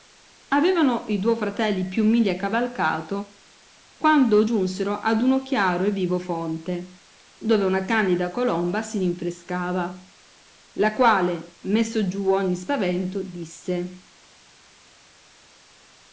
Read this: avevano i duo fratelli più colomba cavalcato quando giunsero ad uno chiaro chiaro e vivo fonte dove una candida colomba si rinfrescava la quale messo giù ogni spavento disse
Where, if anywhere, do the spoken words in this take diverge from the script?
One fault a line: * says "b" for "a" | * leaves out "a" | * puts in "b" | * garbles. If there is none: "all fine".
* says "miglia" for "colomba"
* leaves out "chiaro"